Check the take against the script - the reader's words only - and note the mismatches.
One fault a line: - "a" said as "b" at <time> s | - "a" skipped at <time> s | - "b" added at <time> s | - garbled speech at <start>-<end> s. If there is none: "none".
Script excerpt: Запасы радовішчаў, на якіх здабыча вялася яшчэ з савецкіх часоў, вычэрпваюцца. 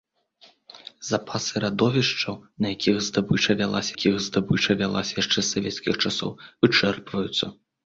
- "якіх здабыча вялася" added at 3.9 s